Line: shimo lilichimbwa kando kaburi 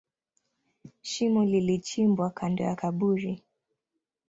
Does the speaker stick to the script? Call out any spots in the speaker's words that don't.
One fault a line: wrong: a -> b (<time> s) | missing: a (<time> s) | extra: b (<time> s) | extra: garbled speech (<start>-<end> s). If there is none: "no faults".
extra: ya (2.6 s)